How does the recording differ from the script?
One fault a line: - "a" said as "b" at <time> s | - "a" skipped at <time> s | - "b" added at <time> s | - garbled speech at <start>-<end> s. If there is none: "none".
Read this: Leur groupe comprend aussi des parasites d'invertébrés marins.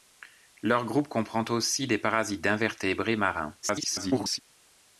- garbled speech at 3.6-4.4 s